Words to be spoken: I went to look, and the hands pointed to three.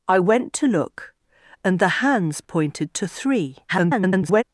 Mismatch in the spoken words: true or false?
true